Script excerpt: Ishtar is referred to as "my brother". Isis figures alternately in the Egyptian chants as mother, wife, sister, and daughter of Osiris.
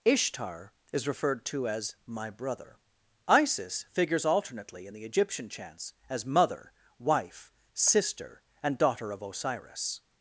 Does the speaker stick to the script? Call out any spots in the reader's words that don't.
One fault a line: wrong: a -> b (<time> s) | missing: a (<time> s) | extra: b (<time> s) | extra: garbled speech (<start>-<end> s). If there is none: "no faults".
no faults